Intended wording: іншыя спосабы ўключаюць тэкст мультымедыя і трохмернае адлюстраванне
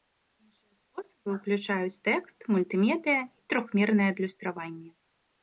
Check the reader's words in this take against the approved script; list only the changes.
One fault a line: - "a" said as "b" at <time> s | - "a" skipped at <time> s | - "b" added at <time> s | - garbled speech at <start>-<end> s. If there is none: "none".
none